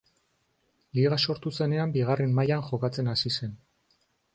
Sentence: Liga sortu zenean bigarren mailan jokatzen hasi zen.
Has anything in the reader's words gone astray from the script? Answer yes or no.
no